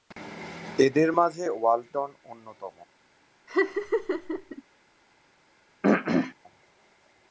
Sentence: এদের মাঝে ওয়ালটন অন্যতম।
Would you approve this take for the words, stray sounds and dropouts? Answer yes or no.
no